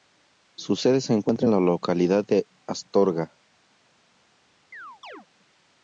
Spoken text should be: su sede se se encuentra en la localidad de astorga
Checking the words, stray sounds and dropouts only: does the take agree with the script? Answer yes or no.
no